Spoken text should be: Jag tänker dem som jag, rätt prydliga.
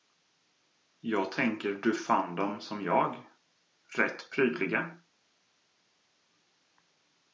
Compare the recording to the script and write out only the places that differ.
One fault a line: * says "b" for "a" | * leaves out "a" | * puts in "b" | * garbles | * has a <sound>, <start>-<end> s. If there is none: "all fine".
* puts in "du fann"